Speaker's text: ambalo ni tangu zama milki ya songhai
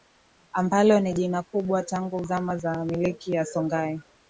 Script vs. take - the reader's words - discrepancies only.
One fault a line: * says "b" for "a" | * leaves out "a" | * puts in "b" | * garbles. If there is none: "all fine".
* puts in "jina kubwa"
* puts in "za"